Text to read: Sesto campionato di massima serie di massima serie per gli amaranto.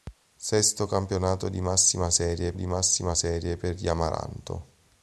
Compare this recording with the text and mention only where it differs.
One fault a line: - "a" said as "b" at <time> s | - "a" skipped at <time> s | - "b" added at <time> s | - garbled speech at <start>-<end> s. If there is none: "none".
none